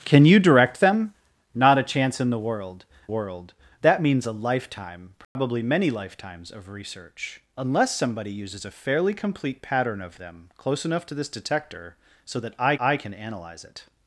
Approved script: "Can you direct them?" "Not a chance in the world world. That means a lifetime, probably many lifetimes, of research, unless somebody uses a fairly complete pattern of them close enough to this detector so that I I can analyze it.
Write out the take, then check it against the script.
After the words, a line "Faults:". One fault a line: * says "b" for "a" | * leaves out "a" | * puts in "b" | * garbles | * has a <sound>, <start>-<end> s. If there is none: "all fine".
"Can you direct them?" "Not a chance in the world world. That means a lifetime, probably many lifetimes, of research, unless somebody uses a fairly complete pattern of them close enough to this detector so that I I can analyze it.
Faults:
* has a dropout, 5.2-5.4 s